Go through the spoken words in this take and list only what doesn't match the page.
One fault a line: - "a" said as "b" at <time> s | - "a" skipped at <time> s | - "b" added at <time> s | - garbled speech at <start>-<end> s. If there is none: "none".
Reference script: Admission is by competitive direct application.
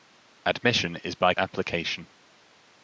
- "competitive direct" skipped at 1.4 s